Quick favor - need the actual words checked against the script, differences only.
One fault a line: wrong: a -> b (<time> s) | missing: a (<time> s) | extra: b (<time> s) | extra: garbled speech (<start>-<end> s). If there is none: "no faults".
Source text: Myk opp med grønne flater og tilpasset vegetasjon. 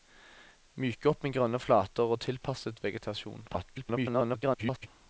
extra: garbled speech (3.5-4.9 s)